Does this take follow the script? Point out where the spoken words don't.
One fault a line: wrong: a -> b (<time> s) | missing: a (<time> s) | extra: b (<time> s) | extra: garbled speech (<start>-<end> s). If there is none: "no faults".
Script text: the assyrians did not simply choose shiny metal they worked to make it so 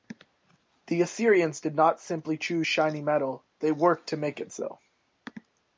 no faults